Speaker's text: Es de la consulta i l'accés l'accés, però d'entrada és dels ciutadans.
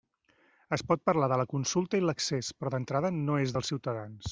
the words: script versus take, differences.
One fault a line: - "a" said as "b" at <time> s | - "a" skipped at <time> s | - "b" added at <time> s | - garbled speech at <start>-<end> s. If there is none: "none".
- "pot parlar" added at 0.9 s
- "l'accés" skipped at 2.5 s
- "no" added at 3.2 s